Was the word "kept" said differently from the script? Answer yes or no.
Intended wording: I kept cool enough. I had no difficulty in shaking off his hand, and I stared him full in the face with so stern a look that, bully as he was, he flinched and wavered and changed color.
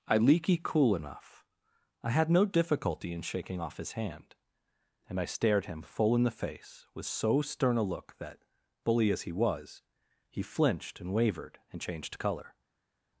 yes